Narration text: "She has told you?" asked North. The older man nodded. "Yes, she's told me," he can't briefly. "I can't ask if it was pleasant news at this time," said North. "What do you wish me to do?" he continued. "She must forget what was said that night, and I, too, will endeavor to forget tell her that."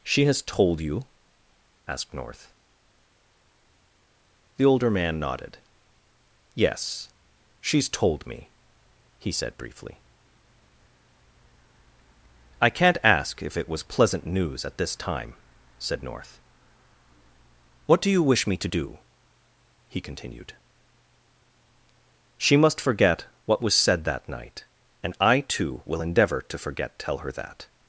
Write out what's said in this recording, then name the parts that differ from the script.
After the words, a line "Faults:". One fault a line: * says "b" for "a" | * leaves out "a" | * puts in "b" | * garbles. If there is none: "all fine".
"She has told you?" asked North. The older man nodded. "Yes, she's told me," he said briefly. "I can't ask if it was pleasant news at this time," said North. "What do you wish me to do?" he continued. "She must forget what was said that night, and I, too, will endeavor to forget tell her that."
Faults:
* says "said" for "can't"